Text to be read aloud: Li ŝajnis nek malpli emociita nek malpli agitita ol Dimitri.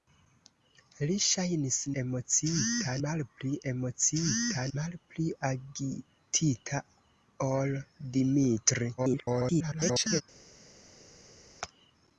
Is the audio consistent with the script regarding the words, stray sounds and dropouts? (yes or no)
no